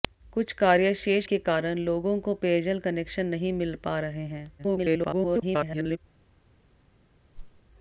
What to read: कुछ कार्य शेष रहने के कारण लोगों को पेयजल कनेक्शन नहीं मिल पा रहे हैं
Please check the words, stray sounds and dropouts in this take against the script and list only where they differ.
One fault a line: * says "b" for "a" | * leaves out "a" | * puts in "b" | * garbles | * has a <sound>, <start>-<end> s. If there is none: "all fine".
* leaves out "रहने"
* garbles
* has a whoosh, 7.3-7.6 s